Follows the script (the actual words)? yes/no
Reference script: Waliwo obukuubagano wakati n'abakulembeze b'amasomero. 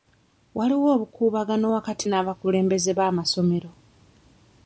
yes